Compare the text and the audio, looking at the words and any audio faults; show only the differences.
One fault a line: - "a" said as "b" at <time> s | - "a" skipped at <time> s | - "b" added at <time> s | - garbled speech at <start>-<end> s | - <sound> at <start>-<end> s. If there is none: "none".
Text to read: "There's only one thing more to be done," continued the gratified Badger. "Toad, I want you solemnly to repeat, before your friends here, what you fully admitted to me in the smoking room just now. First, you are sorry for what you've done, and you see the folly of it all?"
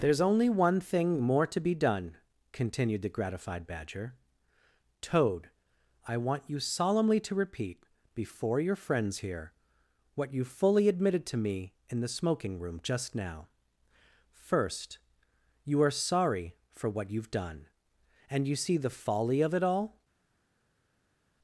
none